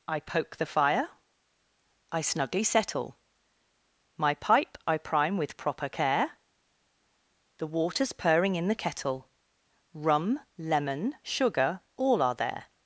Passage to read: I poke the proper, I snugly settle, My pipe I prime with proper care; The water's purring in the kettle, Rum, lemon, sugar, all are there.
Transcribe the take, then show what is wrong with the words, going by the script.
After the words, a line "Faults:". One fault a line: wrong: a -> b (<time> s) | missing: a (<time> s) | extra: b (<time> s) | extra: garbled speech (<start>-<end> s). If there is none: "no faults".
I poke the fire, I snugly settle, My pipe I prime with proper care; The water's purring in the kettle, Rum, lemon, sugar, all are there.
Faults:
wrong: proper -> fire (0.7 s)